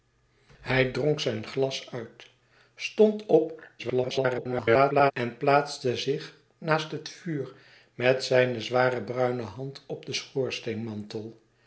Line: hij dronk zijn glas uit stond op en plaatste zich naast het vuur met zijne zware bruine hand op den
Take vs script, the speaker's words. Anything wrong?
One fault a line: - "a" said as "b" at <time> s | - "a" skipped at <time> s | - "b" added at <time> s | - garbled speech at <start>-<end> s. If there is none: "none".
- garbled speech at 3.8-5.1 s